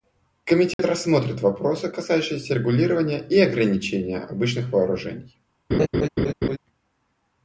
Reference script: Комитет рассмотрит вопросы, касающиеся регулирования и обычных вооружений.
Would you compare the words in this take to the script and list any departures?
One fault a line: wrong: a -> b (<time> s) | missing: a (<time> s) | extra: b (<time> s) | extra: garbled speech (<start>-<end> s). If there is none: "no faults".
extra: ограничения (3.4 s)